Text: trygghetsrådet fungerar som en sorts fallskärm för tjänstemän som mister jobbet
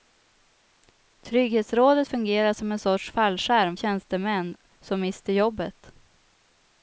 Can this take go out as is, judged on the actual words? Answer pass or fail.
fail